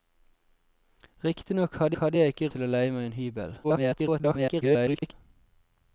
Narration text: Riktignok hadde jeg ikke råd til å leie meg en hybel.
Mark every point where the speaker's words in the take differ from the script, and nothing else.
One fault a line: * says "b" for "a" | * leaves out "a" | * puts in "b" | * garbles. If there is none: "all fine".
* puts in "hadde"
* leaves out "råd"
* garbles